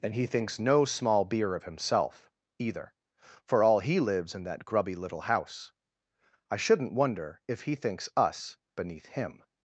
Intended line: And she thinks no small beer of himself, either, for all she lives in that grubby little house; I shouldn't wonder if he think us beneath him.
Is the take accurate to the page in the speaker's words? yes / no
no